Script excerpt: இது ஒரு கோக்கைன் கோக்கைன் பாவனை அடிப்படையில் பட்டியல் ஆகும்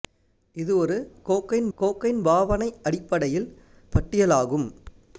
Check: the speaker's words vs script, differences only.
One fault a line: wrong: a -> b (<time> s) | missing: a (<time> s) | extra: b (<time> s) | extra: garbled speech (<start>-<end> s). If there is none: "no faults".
no faults